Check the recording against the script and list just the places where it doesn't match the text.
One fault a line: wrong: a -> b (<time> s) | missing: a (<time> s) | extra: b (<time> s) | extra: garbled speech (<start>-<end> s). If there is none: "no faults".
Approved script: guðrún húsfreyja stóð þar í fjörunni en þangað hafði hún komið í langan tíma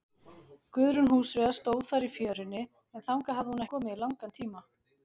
no faults